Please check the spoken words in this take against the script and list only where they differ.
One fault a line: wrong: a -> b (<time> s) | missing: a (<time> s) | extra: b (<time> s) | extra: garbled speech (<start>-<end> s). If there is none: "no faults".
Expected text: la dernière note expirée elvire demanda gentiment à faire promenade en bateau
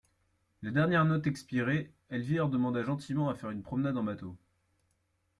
extra: une (3.5 s)